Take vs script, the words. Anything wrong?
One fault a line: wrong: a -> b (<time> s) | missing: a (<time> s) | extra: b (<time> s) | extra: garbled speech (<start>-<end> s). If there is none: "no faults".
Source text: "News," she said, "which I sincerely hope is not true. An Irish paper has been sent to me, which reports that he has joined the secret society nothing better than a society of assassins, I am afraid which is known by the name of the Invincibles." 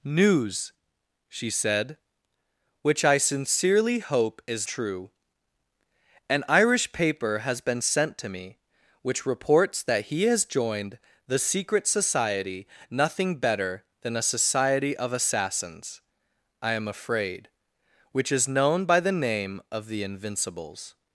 missing: not (4.7 s)